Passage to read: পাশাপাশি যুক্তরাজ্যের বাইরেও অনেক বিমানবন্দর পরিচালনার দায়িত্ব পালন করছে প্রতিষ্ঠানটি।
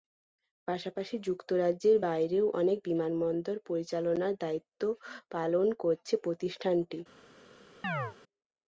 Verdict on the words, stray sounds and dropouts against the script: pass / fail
fail